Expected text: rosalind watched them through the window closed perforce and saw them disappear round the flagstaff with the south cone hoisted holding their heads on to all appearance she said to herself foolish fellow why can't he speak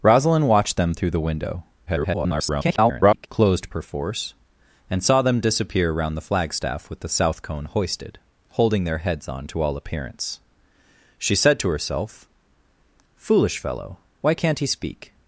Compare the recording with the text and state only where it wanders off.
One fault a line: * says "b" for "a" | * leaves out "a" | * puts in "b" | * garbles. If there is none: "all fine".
* garbles